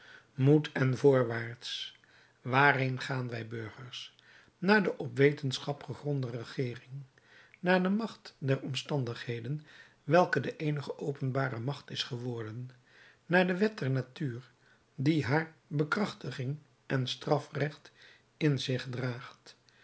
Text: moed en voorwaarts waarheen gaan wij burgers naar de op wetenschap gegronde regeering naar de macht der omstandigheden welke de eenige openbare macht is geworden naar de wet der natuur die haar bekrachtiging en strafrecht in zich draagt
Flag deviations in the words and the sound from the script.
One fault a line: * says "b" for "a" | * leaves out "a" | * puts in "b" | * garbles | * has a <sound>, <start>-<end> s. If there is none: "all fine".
all fine